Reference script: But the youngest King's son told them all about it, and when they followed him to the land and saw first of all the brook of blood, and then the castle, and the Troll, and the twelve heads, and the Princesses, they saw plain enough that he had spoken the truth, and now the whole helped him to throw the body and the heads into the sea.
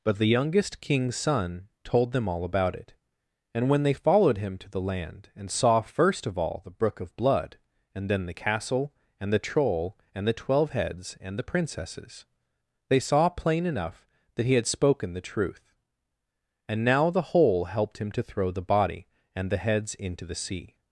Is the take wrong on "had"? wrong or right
right